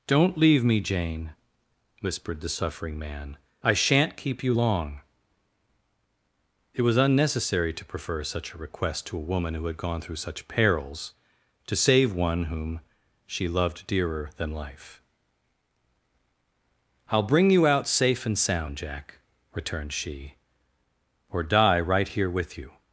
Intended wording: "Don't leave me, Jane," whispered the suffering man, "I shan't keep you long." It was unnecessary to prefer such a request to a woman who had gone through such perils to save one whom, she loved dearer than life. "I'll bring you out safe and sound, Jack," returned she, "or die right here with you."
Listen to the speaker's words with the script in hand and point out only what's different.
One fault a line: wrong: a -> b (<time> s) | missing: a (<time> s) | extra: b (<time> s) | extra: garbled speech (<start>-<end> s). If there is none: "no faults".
no faults